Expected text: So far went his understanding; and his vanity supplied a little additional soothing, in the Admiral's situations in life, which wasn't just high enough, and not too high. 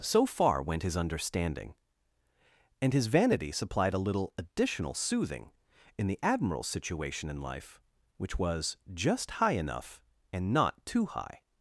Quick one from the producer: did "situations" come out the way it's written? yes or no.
no